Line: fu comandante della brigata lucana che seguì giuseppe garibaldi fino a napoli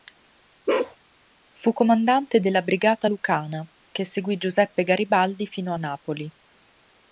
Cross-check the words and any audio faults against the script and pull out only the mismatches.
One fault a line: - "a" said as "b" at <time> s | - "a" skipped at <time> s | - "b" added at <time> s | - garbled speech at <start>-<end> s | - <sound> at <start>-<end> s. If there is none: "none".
- bark at 0.7-1.0 s